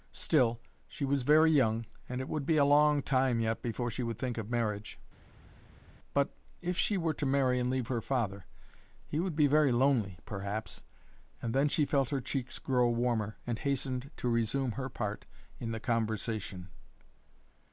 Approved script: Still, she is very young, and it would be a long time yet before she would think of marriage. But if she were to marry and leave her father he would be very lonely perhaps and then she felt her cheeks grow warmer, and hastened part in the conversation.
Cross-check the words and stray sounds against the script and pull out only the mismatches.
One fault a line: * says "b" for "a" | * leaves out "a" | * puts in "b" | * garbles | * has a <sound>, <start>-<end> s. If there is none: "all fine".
* says "was" for "is"
* puts in "to resume her"